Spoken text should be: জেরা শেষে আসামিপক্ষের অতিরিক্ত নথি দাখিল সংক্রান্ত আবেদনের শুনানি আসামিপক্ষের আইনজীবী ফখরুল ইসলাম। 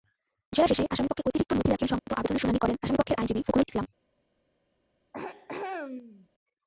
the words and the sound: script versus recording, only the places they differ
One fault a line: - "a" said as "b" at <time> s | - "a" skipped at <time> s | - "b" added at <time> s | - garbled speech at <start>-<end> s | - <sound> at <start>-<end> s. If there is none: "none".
- dropout at 2.0-2.1 s
- "করেন" added at 2.6 s
- throat clearing at 5.1-6.3 s